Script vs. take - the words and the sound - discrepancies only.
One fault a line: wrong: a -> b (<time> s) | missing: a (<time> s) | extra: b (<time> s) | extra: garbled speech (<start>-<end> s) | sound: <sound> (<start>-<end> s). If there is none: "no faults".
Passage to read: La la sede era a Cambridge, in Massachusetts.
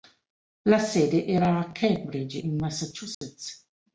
missing: la (0.8 s)
sound: dropout (3.1-3.2 s)